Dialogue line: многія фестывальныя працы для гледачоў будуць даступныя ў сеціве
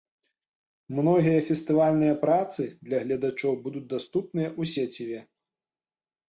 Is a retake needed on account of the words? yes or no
no